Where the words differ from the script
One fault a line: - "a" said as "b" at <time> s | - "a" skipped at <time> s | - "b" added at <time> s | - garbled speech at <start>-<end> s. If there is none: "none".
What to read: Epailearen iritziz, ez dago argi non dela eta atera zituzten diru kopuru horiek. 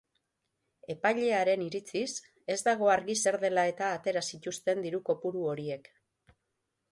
- "non" said as "zer" at 3.2 s